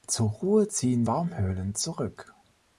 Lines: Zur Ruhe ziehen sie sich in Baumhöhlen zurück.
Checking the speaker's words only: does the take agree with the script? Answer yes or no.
no